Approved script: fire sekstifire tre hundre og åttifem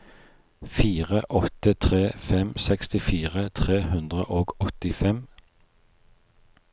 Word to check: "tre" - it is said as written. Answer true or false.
true